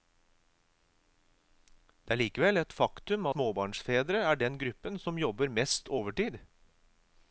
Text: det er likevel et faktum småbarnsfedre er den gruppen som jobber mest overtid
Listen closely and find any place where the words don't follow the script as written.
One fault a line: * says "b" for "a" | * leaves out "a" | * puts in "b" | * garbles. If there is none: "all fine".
all fine